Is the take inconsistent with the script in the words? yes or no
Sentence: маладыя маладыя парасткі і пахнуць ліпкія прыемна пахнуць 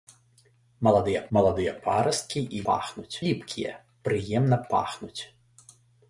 no